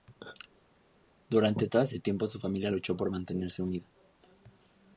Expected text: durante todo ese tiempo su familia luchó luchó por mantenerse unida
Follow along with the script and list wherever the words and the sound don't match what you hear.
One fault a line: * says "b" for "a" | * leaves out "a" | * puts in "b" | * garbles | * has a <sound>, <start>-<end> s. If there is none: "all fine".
* leaves out "luchó"